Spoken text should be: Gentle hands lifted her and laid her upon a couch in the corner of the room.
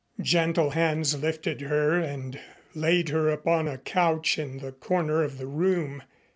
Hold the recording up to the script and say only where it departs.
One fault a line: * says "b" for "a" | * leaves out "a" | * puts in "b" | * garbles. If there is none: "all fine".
all fine